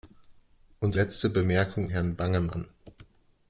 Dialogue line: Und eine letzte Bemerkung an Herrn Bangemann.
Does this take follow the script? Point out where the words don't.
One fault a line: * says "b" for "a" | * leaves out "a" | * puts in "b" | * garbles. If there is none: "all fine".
* leaves out "eine"
* leaves out "an"